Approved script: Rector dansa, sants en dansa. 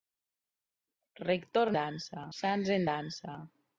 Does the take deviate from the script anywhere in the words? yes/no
no